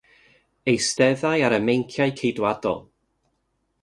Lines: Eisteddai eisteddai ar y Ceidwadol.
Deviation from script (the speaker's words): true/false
true